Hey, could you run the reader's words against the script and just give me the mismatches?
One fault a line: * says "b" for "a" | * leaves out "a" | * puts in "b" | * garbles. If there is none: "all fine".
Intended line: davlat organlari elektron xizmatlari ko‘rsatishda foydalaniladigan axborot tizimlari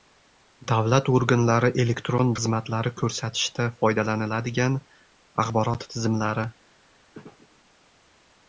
all fine